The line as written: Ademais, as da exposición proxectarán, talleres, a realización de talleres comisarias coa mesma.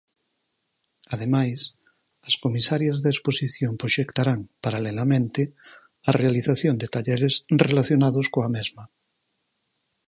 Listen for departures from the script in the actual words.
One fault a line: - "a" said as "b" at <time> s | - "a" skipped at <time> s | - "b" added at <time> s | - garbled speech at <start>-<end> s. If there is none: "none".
- "comisarias" added at 2.4 s
- "talleres" said as "paralelamente" at 4.6 s
- "comisarias" said as "relacionados" at 7.7 s